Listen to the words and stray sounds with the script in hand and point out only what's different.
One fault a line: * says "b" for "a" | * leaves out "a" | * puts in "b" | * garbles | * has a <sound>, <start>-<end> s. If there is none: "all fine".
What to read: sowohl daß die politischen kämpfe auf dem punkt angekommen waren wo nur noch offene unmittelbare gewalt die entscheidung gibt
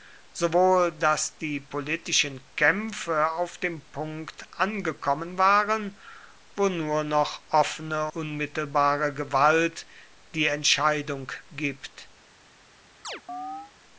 * has a chirp, 13.0-13.7 s